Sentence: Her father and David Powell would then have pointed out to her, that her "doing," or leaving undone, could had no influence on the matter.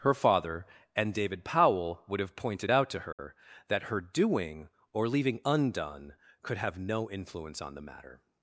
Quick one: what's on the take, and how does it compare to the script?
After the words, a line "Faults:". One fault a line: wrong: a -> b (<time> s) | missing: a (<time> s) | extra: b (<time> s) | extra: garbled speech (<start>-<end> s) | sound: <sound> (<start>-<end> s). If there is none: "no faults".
Her father and David Powell would have pointed out to her, that her "doing," or leaving undone, could have no influence on the matter.
Faults:
missing: then (2.2 s)
sound: dropout (3.1-3.2 s)
wrong: had -> have (6.6 s)